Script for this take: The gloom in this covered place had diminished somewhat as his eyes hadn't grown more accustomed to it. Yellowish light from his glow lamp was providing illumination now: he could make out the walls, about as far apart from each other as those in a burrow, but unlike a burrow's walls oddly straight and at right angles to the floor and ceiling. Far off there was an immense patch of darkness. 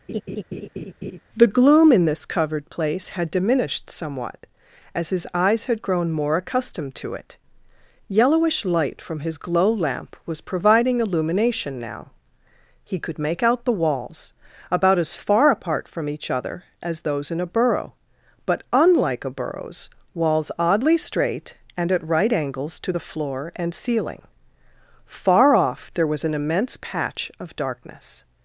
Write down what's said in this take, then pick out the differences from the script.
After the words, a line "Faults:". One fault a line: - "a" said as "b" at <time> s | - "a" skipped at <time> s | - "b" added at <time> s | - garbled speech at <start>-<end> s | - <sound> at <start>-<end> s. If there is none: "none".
The gloom in this covered place had diminished somewhat as his eyes had grown more accustomed to it. Yellowish light from his glow lamp was providing illumination now: he could make out the walls, about as far apart from each other as those in a burrow, but unlike a burrow's walls oddly straight and at right angles to the floor and ceiling. Far off there was an immense patch of darkness.
Faults:
- laugh at 0.1-1.2 s
- "hadn't" said as "had" at 5.6 s